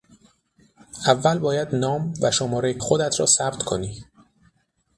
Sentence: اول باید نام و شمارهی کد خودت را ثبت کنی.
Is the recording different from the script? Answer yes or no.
yes